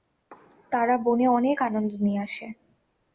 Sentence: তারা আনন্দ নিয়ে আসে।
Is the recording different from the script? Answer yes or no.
yes